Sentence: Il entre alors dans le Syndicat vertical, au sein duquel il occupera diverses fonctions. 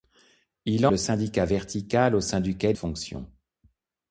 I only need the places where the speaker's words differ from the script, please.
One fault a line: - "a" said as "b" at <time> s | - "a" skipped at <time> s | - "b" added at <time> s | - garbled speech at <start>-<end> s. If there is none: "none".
- "entre alors dans" skipped at 0.9 s
- "il occupera diverses" skipped at 2.8 s